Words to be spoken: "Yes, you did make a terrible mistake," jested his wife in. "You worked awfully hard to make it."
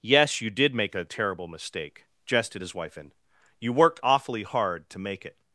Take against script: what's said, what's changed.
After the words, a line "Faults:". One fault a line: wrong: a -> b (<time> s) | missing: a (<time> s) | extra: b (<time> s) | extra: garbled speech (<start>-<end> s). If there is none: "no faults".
"Yes, you did make a terrible mistake," jested his wife in. "You worked awfully hard to make it."
Faults:
no faults